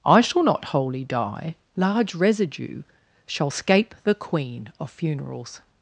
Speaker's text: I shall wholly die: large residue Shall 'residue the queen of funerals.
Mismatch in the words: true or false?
true